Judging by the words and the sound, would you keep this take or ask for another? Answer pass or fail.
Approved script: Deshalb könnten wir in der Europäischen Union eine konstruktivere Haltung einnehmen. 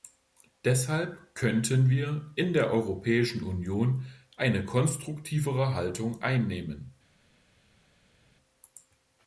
pass